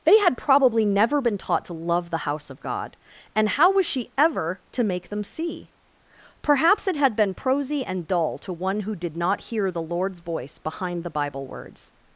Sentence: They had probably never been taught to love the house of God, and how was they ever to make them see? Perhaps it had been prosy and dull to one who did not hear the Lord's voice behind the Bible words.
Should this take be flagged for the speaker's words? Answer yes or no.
yes